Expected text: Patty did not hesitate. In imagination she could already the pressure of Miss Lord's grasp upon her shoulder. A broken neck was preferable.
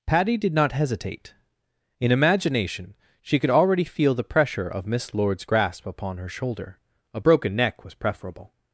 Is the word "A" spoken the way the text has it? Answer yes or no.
yes